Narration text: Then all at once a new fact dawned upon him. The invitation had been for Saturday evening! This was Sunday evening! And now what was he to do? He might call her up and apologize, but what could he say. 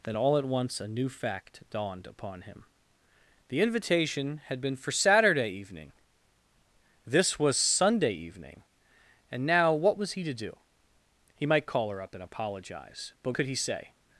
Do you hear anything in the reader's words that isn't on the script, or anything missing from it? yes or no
yes